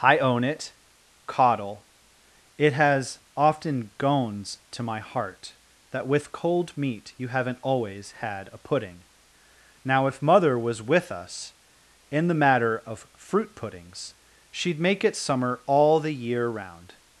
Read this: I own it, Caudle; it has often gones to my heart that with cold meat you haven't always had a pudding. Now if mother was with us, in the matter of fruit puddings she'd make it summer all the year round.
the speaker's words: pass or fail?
pass